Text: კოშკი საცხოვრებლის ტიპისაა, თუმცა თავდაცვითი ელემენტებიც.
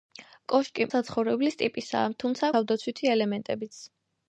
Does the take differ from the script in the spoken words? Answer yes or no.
no